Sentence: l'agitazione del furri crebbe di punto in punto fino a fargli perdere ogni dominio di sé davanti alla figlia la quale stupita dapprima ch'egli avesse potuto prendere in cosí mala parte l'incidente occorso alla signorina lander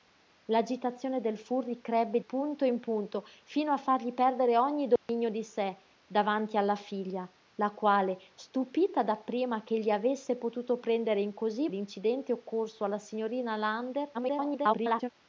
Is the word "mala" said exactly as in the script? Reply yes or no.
no